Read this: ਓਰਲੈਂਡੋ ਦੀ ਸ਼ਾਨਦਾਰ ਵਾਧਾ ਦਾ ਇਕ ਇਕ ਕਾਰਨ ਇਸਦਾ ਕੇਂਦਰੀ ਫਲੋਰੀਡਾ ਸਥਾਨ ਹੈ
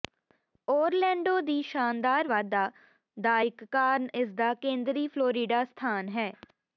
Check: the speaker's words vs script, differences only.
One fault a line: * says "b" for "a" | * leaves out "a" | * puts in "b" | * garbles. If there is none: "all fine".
* leaves out "ਇਕ"